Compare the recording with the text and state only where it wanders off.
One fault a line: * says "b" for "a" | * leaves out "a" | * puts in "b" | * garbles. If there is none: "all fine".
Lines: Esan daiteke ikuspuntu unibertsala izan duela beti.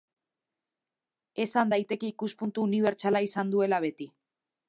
all fine